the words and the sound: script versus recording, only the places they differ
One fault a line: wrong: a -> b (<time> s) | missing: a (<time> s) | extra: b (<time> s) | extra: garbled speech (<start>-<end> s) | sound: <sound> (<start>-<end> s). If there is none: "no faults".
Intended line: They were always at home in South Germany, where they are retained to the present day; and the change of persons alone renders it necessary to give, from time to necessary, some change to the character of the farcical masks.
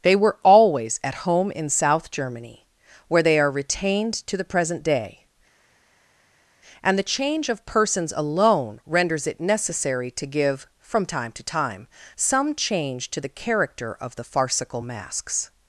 wrong: necessary -> time (11.4 s)